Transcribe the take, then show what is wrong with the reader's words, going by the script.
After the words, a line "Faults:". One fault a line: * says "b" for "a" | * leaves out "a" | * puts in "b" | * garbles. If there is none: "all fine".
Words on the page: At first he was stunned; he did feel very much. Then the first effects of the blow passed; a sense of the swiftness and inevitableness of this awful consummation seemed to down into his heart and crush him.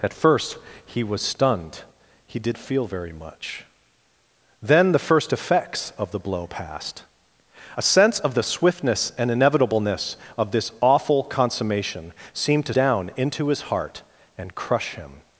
At first he was stunned; he did feel very much. Then the first effects of the blow passed; a sense of the swiftness and inevitableness of this awful consummation seemed to down into his heart and crush him.
Faults:
all fine